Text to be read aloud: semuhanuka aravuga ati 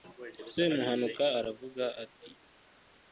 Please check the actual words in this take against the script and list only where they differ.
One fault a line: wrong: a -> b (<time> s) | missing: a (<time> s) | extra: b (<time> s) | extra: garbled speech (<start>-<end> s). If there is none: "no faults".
no faults